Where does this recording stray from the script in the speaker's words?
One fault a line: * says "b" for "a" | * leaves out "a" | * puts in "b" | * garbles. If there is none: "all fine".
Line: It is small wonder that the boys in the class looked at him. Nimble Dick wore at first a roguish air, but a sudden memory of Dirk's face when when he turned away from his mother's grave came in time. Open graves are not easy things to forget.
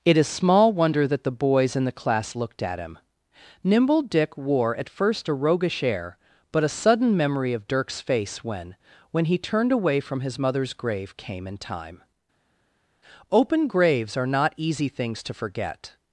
all fine